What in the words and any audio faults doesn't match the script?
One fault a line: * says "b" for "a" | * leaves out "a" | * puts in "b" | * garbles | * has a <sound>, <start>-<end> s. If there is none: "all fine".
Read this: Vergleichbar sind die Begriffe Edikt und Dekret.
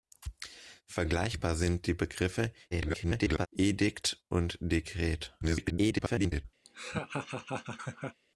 * garbles
* garbles
* has a laugh, 6.6-8.2 s